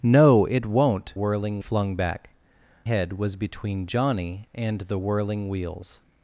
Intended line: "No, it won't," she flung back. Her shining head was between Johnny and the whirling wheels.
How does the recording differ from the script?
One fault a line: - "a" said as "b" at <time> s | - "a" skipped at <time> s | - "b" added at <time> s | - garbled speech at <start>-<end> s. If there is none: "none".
- "she" said as "whirling" at 1.1 s
- "Her shining" skipped at 2.3 s